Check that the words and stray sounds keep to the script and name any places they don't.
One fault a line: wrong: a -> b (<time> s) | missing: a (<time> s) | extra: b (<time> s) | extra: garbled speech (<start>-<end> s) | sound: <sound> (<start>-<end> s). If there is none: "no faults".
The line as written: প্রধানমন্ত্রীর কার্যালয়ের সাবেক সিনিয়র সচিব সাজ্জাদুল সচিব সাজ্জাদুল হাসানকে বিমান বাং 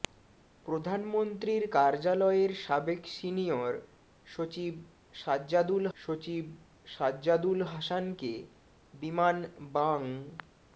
no faults